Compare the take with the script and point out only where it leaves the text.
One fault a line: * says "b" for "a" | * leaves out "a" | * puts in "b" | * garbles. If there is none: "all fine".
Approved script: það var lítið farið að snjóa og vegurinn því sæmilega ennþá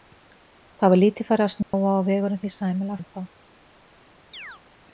all fine